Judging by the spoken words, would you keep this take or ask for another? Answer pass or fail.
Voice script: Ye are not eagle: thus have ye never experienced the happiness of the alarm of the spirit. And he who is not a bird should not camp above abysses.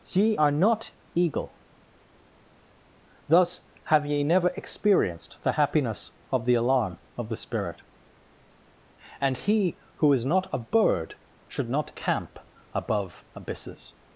pass